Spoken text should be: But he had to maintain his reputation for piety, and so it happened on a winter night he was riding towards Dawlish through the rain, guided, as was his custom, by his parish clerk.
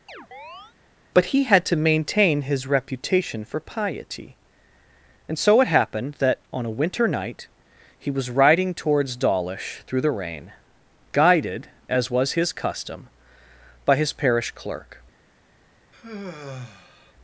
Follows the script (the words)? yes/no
no